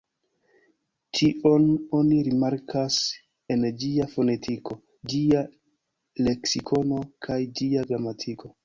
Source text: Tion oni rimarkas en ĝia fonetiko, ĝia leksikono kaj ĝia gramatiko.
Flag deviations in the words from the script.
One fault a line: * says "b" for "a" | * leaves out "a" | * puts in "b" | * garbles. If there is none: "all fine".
all fine